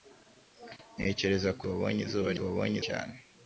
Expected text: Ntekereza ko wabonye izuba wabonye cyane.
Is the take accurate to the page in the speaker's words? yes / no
yes